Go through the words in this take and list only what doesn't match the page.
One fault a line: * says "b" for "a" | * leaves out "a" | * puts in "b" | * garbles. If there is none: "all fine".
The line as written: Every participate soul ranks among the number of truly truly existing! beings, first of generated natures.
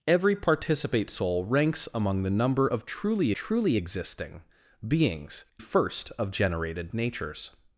all fine